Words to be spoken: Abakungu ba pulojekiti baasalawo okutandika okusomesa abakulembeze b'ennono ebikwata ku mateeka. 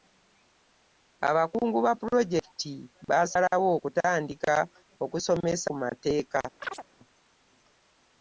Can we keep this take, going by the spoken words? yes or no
no